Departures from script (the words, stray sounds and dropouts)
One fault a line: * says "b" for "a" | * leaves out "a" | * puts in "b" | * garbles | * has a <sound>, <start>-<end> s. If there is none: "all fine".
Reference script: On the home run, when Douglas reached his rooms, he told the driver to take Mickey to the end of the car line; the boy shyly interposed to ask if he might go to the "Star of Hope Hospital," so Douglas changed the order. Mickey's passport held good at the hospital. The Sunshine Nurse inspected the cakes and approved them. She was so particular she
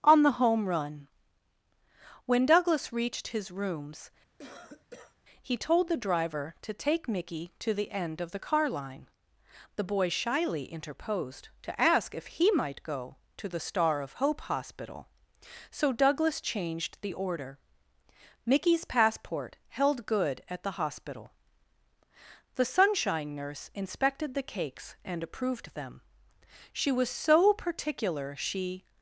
* has a cough, 4.4-5.2 s